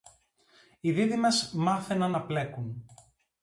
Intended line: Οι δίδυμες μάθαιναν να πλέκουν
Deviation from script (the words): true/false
false